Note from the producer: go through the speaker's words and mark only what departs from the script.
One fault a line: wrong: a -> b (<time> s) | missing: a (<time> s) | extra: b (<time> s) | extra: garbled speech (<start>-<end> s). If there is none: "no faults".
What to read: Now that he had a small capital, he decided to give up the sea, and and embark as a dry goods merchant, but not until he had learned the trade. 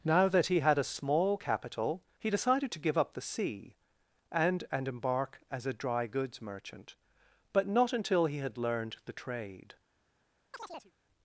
no faults